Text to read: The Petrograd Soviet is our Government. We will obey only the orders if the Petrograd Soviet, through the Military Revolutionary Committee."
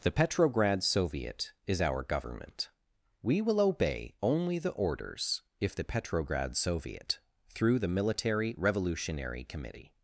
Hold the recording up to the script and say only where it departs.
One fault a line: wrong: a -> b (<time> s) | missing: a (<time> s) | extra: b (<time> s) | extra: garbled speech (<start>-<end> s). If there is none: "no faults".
no faults